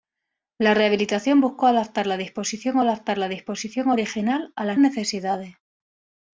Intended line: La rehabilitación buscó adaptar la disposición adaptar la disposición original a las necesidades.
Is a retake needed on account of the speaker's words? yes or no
no